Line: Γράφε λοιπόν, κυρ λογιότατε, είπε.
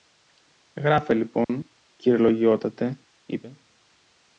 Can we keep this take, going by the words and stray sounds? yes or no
no